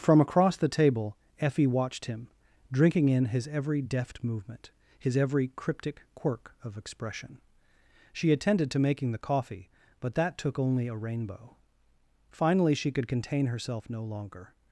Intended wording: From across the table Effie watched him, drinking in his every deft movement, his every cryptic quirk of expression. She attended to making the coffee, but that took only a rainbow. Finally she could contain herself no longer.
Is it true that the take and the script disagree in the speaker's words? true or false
false